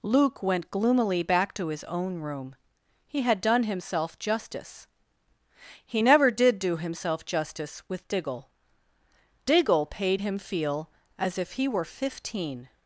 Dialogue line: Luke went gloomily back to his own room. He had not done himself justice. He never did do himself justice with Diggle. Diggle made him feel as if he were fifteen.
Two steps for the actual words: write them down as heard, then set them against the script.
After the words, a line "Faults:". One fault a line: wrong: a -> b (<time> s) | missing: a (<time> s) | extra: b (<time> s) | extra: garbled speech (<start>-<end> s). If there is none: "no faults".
Luke went gloomily back to his own room. He had done himself justice. He never did do himself justice with Diggle. Diggle paid him feel as if he were fifteen.
Faults:
missing: not (3.4 s)
wrong: made -> paid (9.9 s)